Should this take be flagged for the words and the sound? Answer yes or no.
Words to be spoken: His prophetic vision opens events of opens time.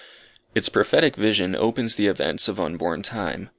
yes